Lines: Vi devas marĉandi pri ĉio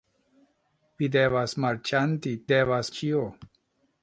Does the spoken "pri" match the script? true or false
false